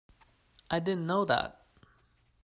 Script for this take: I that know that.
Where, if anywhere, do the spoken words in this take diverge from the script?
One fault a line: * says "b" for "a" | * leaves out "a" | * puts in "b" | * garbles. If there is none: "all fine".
* says "didn't" for "that"